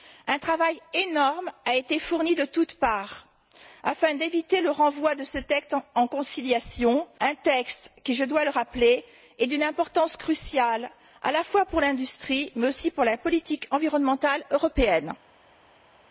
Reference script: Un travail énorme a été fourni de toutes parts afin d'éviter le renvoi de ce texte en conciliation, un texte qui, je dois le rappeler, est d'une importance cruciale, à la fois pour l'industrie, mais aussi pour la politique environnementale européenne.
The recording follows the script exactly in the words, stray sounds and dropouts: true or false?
true